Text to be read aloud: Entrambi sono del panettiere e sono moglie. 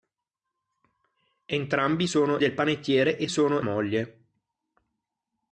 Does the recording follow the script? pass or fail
pass